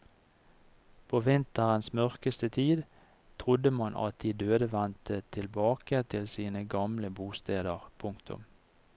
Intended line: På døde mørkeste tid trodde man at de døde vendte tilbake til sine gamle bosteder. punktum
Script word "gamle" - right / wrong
right